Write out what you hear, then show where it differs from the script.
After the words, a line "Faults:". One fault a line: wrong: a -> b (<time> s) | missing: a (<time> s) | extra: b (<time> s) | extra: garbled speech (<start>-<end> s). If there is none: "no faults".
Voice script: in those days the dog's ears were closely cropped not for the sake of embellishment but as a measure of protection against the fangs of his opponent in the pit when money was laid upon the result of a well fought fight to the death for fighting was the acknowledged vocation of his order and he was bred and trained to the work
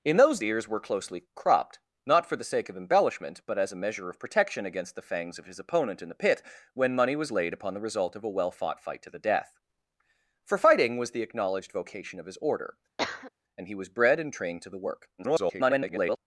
in those ears were closely cropped not for the sake of embellishment but as a measure of protection against the fangs of his opponent in the pit when money was laid upon the result of a well fought fight to the death for fighting was the acknowledged vocation of his order and he was bred and trained to the work [garbled]
Faults:
missing: days the dog's (0.4 s)
extra: garbled speech (15.2-16.2 s)